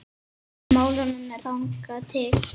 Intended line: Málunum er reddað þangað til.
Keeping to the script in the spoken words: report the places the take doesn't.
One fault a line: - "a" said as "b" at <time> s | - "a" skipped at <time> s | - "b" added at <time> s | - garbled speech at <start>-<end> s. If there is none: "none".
- "reddað" skipped at 1.4 s